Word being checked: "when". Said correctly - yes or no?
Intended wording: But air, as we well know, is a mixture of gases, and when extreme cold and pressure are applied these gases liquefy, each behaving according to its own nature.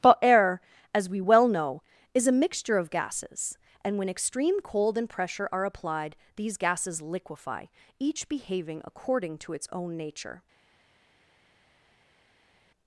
yes